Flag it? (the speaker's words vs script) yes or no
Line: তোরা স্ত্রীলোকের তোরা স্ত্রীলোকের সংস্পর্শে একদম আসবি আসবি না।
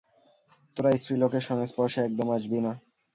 yes